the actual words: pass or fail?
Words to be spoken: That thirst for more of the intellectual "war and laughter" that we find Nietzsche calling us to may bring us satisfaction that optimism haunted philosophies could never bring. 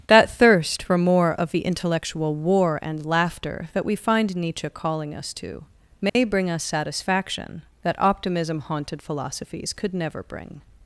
pass